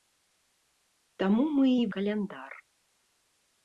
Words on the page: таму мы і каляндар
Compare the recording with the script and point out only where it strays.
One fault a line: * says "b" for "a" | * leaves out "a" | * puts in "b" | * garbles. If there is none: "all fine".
all fine